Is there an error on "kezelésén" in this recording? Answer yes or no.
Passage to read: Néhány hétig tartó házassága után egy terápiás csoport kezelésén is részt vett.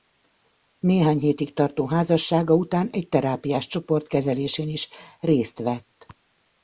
no